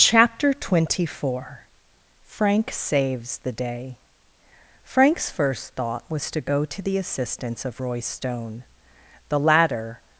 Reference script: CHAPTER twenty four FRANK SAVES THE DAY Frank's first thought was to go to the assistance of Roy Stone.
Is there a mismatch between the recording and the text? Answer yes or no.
yes